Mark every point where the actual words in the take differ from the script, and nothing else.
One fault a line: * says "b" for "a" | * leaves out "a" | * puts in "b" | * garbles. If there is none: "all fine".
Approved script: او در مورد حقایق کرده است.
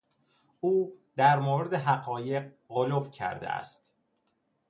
* puts in "غلو"